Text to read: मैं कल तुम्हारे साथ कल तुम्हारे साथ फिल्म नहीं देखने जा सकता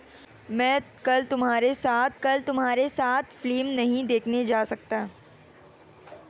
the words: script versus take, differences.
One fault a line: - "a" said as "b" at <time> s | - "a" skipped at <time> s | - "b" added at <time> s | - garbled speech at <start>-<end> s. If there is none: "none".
none